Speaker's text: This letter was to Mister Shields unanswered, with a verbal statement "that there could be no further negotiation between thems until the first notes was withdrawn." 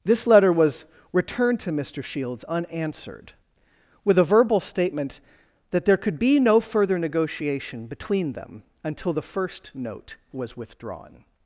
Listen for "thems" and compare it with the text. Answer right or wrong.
wrong